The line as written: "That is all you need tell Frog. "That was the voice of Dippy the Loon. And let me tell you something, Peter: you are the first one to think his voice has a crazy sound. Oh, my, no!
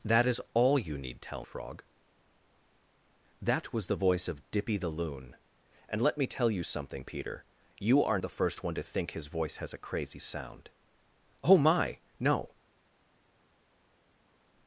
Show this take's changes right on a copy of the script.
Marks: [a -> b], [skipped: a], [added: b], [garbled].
"That is all you need tell Frog. "That was the voice of Dippy the Loon. And let me tell you something, Peter: you are the first one to think his voice has a crazy sound. Oh, my, no!